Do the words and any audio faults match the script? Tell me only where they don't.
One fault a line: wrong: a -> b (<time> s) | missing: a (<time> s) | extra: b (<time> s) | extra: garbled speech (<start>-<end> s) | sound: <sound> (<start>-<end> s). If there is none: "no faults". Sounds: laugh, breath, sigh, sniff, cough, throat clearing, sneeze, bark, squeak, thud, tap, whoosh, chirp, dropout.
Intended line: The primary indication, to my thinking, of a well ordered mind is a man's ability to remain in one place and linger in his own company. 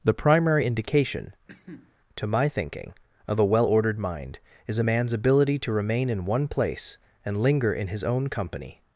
sound: cough (1.5-1.9 s)